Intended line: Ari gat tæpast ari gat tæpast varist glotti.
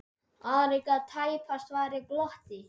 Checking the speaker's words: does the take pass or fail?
fail